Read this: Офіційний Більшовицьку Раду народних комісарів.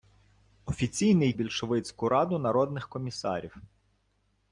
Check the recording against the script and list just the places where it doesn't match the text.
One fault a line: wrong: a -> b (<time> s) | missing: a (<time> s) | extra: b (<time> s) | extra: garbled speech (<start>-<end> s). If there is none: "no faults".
no faults